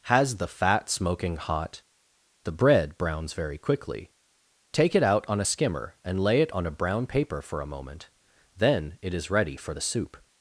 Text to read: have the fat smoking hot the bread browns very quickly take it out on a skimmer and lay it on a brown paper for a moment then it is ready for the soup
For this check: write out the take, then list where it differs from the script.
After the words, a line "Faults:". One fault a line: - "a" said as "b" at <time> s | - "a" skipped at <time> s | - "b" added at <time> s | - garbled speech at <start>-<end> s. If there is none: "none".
has the fat smoking hot the bread browns very quickly take it out on a skimmer and lay it on a brown paper for a moment then it is ready for the soup
Faults:
- "have" said as "has" at 0.1 s